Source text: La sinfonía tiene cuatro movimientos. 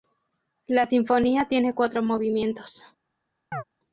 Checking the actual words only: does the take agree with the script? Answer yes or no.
yes